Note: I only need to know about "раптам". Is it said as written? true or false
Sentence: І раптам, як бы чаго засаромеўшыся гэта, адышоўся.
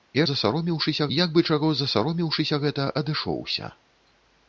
false